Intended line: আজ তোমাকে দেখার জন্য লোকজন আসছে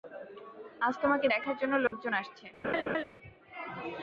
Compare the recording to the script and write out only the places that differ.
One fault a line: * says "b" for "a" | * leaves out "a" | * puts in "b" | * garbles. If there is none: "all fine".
all fine